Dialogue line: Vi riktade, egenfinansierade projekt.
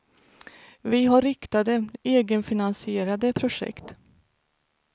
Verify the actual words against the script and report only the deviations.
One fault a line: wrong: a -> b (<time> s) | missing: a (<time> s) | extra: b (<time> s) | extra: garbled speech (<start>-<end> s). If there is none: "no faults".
extra: har (1.1 s)